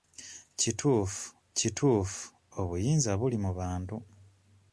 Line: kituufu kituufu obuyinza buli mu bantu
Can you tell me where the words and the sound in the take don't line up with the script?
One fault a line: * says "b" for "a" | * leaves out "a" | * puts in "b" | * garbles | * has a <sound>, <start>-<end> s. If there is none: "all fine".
all fine